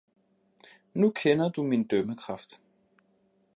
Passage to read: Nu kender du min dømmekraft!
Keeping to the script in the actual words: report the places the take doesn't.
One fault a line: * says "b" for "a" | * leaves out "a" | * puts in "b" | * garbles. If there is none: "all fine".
all fine